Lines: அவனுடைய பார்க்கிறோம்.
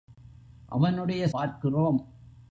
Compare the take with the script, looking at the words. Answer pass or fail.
pass